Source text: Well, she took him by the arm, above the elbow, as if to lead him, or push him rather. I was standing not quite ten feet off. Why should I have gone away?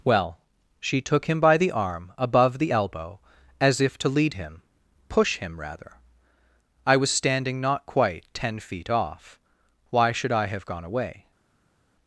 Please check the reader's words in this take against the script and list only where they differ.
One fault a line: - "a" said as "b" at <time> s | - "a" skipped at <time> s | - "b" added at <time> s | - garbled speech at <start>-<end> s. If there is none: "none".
- "or" skipped at 4.6 s